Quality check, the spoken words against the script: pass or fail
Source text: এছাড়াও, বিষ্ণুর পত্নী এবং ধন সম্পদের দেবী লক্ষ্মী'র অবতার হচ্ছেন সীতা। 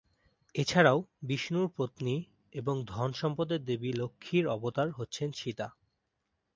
pass